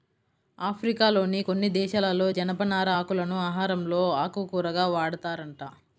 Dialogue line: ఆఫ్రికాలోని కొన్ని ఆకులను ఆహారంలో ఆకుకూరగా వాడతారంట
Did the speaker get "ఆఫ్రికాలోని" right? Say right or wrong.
right